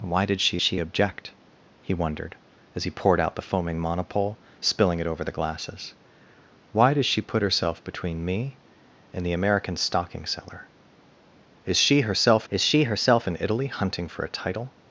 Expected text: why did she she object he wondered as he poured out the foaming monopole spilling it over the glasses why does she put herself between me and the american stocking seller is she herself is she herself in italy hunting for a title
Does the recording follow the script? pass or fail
pass